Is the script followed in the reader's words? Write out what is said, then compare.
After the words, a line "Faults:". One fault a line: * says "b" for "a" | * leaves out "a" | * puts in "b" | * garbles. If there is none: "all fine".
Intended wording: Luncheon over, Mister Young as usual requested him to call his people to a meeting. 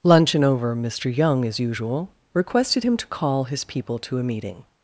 Luncheon over, Mister Young as usual requested him to call his people to a meeting.
Faults:
all fine